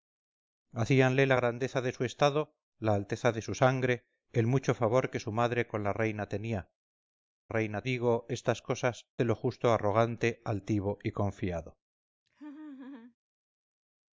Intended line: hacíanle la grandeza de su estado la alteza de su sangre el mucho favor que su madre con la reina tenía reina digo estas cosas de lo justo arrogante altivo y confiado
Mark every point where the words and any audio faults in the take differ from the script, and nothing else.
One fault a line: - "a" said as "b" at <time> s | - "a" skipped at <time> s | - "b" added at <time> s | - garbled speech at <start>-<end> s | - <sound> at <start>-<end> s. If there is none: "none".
- laugh at 12.3-13.2 s